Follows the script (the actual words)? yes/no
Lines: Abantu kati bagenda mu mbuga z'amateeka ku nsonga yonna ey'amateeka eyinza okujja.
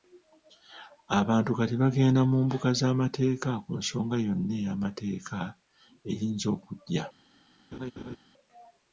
yes